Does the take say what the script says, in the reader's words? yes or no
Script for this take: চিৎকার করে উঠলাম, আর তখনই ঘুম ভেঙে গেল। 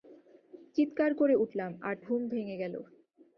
no